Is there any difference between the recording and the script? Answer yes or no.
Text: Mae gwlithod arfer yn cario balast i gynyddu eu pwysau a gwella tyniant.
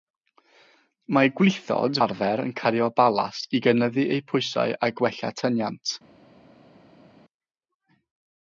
no